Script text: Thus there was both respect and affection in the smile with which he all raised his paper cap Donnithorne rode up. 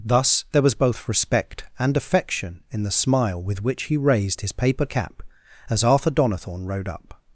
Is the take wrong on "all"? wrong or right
wrong